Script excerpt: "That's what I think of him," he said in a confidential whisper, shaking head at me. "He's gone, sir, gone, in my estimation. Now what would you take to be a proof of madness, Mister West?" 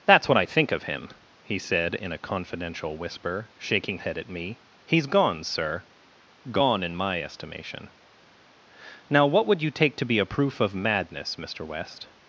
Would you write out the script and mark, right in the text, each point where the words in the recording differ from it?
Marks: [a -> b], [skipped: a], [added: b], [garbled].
"That's what I think of him," he said in a confidential whisper, shaking head at me. "He's gone, sir, gone, in my estimation. Now what would you take to be a proof of madness, Mister West?"